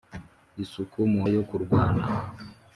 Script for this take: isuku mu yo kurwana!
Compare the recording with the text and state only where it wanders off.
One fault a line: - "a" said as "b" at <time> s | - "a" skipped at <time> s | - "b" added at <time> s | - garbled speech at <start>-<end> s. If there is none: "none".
none